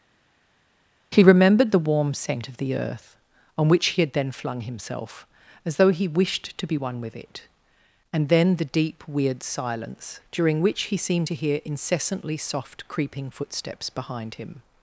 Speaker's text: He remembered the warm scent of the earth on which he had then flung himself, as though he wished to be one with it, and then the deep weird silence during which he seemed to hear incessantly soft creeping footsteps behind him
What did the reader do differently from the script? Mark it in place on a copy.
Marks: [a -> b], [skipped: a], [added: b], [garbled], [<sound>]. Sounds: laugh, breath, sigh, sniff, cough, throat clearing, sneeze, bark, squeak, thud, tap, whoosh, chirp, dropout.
He remembered the warm scent of the earth on which he had then flung himself, as though he wished to be one with it, and then the deep weird silence during which he seemed to hear incessantly soft creeping footsteps behind him